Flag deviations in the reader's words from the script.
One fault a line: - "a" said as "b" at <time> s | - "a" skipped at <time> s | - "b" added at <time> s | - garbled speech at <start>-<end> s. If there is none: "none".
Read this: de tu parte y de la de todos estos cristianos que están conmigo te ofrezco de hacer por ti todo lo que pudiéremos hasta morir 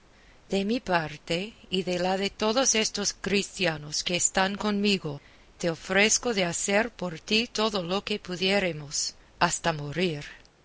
- "tu" said as "mi" at 0.7 s